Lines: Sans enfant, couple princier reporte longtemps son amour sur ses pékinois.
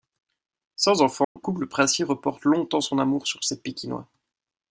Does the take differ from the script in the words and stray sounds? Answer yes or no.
yes